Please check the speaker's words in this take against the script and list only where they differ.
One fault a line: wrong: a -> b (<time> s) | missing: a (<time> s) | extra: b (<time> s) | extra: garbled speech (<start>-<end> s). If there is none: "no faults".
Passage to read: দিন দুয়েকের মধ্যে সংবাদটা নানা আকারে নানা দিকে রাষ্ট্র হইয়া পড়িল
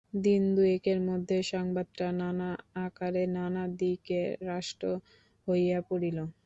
no faults